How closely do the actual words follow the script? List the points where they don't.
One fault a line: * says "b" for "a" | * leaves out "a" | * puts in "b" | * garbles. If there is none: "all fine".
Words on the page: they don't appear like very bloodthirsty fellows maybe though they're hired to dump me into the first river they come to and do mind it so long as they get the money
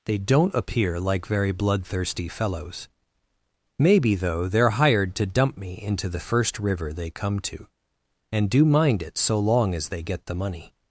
all fine